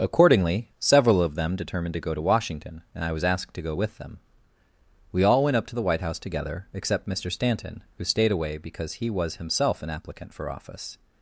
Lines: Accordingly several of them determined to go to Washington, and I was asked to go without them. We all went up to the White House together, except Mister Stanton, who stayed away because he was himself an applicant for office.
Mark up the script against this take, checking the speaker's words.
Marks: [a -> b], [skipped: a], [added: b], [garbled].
Accordingly several of them determined to go to Washington, and I was asked to go [without -> with] them. We all went up to the White House together, except Mister Stanton, who stayed away because he was himself an applicant for office.